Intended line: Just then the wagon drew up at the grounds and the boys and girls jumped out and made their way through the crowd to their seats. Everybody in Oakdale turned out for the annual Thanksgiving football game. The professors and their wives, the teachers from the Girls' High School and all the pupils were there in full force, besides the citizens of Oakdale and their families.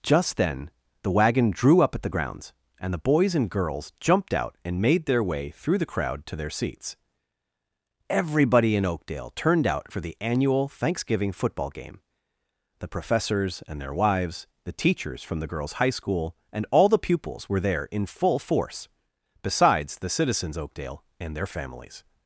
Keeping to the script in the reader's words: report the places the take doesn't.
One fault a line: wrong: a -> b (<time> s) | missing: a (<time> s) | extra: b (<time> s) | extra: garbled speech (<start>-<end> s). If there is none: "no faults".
missing: of (20.6 s)